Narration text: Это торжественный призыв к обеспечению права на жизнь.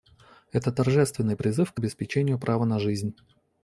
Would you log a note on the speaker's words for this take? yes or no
no